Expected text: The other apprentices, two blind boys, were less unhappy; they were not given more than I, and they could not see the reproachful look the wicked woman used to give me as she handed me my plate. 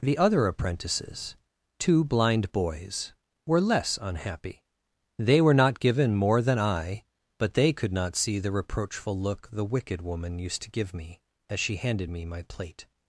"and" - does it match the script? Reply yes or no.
no